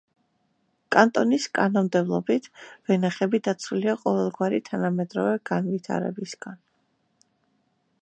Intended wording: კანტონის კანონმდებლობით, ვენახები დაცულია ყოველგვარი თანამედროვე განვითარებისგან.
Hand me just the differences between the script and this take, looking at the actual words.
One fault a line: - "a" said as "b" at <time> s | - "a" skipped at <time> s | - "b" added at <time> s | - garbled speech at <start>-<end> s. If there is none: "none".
none